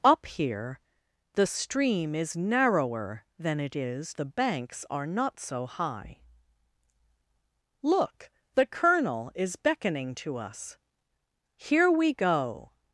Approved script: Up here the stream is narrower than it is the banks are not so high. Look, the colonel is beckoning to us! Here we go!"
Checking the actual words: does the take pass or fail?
pass